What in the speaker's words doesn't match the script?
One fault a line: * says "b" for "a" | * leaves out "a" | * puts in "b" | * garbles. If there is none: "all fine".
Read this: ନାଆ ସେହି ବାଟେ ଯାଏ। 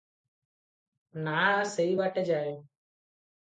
all fine